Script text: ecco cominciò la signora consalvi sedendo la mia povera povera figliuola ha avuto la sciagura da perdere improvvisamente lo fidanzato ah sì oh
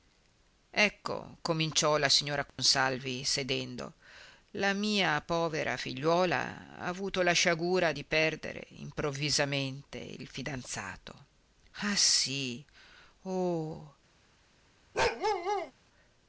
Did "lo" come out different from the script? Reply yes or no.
yes